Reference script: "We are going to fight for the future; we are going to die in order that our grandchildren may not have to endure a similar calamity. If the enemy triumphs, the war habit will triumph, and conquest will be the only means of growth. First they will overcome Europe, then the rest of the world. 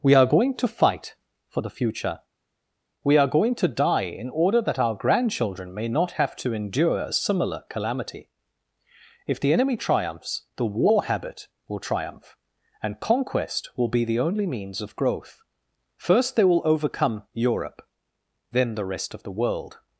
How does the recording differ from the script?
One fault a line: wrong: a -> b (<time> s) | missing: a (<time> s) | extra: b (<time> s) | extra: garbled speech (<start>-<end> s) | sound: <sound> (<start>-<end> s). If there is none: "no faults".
no faults